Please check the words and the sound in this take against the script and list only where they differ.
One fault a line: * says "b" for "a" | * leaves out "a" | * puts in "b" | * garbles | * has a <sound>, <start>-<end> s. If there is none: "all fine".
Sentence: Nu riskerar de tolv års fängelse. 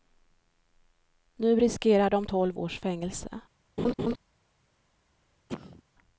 * has a laugh, 3.8-4.2 s
* has a cough, 5.5-5.8 s